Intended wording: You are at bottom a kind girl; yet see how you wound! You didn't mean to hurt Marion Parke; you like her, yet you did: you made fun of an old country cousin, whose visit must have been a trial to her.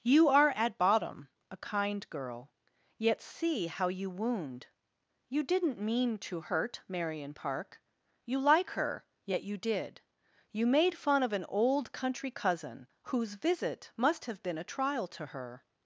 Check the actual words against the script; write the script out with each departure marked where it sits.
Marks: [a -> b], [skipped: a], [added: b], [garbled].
You are at bottom a kind girl; yet see how you wound! You didn't mean to hurt Marion Parke; you like her, yet you did: you made fun of an old country cousin, whose visit must have been a trial to her.